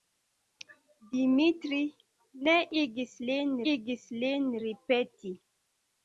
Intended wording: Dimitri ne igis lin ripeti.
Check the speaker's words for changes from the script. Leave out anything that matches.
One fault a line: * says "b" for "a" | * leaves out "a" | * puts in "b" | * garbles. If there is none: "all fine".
* puts in "igis lin"